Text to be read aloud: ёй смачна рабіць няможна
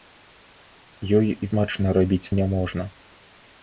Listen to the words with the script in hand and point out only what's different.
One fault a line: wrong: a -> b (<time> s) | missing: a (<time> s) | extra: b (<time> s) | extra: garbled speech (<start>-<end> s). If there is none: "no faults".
no faults